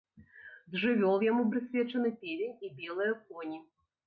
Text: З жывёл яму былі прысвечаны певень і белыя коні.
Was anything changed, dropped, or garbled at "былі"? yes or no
yes